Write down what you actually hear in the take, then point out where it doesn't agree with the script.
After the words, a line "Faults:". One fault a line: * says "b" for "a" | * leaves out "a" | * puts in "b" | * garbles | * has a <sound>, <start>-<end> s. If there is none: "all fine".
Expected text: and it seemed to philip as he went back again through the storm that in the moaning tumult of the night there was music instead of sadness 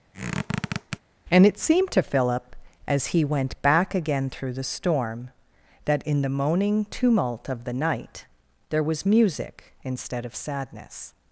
and it seemed to philip as he went back again through the storm that in the moaning tumult of the night there was music instead of sadness
Faults:
* has a squeak, 0.1-1.0 s